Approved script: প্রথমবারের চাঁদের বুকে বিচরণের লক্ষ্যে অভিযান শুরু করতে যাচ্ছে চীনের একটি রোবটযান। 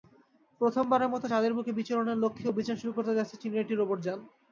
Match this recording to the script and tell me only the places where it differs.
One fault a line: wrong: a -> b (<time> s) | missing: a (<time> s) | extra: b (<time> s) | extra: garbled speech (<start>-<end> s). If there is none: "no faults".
extra: মতো (1.1 s)